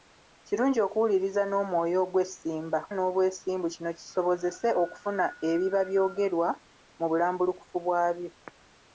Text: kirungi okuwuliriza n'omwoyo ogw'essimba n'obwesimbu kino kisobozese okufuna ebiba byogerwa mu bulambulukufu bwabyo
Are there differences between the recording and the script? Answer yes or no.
no